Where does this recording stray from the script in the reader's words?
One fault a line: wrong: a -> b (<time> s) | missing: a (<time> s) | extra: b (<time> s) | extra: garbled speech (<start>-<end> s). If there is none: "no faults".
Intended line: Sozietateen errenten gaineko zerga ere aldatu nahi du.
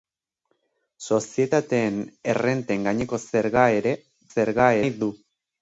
wrong: aldatu -> zerga (4.3 s)